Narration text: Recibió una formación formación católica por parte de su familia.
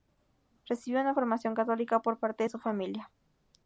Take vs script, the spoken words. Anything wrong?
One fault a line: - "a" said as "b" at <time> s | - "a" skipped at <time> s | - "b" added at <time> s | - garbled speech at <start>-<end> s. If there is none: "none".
- "formación" skipped at 1.5 s